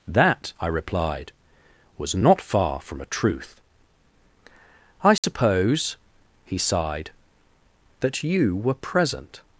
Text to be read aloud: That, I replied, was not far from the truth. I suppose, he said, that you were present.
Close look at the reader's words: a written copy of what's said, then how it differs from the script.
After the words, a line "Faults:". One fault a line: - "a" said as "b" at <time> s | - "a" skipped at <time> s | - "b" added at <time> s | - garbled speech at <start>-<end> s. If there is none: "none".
That, I replied, was not far from a truth. I suppose, he sighed, that you were present.
Faults:
- "the" said as "a" at 3.0 s
- "said" said as "sighed" at 6.6 s